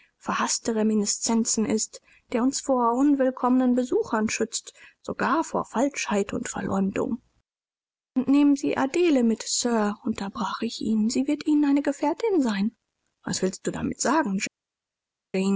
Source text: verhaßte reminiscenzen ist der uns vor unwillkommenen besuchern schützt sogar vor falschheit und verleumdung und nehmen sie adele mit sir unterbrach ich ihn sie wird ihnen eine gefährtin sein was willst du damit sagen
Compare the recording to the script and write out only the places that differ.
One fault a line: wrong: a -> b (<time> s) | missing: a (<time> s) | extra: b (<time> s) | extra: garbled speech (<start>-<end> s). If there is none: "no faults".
no faults